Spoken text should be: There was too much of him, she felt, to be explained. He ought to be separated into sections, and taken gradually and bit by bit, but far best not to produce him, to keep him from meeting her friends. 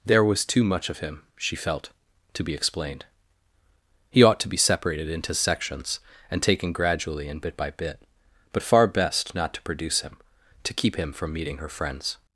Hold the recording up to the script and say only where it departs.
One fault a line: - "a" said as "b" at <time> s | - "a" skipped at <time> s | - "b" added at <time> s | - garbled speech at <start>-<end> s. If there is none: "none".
none